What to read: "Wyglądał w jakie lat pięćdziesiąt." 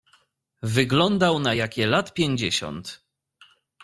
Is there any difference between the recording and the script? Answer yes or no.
yes